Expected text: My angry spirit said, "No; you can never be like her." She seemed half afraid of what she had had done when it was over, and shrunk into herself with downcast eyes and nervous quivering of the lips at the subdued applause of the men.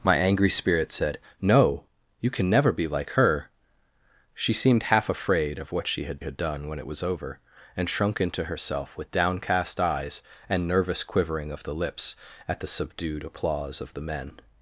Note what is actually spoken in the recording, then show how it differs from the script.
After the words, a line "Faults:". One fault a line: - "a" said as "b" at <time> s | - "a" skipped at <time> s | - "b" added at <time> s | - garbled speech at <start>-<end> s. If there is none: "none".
My angry spirit said, "No; you can never be like her." She seemed half afraid of what she had had done when it was over, and shrunk into herself with downcast eyes and nervous quivering of the lips at the subdued applause of the men.
Faults:
none